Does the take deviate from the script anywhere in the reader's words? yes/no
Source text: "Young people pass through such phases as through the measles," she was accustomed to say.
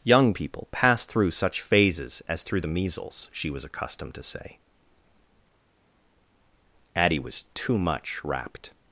yes